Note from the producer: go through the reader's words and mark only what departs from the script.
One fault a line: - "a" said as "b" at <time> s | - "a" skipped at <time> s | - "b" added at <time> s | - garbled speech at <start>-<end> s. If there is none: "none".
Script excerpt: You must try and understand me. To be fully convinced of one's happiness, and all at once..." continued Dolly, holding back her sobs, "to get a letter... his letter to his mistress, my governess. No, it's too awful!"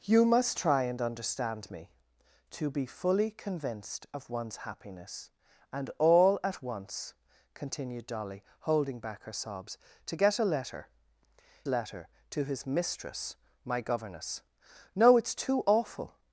- "his" skipped at 10.9 s